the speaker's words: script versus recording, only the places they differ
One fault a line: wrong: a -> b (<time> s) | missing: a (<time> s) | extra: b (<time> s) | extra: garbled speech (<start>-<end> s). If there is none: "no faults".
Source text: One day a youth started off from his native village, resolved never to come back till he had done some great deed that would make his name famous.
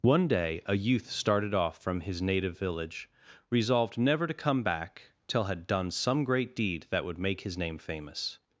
missing: he (5.4 s)